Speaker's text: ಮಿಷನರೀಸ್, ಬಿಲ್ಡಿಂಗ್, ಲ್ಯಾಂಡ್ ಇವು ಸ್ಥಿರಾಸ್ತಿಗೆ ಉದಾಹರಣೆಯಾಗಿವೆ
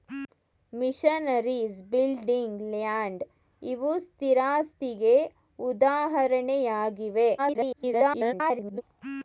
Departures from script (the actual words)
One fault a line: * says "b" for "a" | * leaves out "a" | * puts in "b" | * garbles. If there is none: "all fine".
* garbles